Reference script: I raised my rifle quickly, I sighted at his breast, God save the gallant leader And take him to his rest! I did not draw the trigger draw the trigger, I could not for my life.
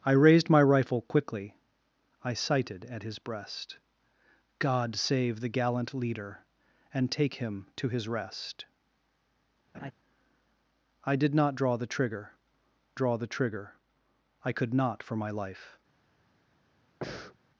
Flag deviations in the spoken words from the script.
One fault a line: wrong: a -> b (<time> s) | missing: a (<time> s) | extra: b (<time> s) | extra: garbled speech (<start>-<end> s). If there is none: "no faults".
no faults